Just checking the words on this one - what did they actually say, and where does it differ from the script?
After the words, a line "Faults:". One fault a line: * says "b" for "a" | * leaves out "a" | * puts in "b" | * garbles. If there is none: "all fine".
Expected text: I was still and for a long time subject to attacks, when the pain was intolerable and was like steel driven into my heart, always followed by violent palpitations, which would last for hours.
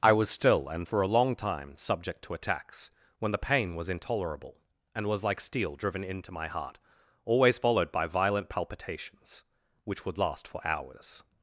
I was still and for a long time subject to attacks, when the pain was intolerable and was like steel driven into my heart, always followed by violent palpitations, which would last for hours.
Faults:
all fine